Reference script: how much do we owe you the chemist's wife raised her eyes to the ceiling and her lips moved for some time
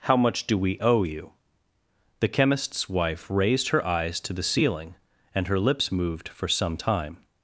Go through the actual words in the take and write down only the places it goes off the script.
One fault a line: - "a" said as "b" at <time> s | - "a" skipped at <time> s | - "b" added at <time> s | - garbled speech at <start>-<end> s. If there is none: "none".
none